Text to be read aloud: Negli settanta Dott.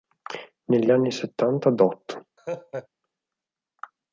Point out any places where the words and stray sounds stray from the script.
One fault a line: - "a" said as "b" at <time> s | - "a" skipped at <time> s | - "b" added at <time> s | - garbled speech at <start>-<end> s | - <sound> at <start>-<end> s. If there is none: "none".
- "anni" added at 0.9 s
- laugh at 2.4-2.9 s